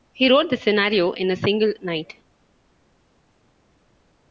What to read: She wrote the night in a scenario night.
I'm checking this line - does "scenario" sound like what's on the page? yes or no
no